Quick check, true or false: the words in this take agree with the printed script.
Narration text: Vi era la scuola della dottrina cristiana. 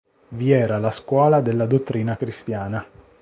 true